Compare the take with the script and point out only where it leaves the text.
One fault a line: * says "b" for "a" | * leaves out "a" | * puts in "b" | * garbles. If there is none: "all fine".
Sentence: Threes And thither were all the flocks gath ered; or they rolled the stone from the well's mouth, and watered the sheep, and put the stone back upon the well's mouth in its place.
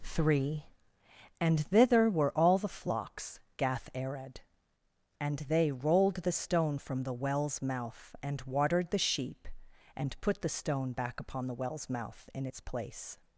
* says "Three" for "Threes"
* says "and" for "or"